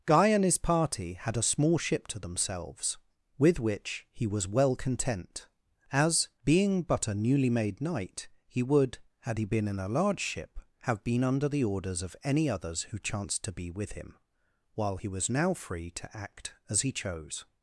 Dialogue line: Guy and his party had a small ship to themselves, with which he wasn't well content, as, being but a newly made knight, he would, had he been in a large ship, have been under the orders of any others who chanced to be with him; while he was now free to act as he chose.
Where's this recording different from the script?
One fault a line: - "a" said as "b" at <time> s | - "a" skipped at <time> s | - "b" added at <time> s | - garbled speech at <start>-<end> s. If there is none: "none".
- "wasn't" said as "was" at 4.2 s